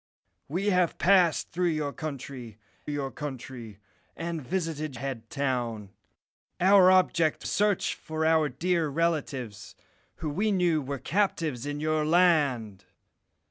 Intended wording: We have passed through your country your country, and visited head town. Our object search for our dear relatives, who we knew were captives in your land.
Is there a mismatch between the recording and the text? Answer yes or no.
no